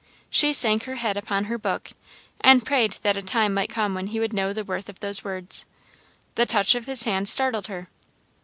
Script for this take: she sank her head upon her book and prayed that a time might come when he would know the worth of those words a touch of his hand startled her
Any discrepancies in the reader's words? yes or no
yes